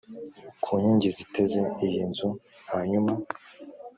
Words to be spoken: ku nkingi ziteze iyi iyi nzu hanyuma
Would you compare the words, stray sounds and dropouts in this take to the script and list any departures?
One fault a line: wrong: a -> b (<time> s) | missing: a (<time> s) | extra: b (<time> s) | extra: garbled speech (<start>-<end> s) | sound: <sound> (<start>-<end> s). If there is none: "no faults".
missing: iyi (2.0 s)